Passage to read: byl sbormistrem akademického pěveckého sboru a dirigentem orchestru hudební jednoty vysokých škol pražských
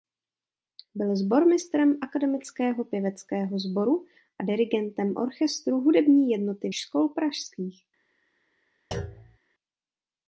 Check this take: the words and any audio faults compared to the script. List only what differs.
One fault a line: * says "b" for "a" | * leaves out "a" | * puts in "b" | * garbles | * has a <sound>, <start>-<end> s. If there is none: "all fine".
* leaves out "vysokých"
* has a thud, 8.9-9.4 s